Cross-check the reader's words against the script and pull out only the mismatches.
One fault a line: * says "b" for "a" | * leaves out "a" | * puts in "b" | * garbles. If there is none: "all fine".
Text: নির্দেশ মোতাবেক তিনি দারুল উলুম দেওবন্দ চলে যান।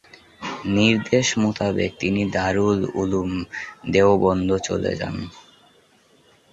all fine